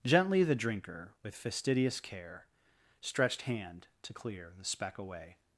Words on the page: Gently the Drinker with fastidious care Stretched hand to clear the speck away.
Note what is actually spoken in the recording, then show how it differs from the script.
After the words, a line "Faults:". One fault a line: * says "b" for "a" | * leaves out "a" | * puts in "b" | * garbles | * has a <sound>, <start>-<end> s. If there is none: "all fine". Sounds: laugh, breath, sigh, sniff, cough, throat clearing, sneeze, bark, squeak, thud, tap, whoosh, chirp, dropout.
Gently the Drinker with fastidious care Stretched hand to clear the speck away.
Faults:
all fine